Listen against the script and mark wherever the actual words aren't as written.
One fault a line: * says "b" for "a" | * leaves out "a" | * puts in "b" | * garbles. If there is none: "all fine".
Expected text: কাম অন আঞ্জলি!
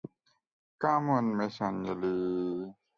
* puts in "মিস"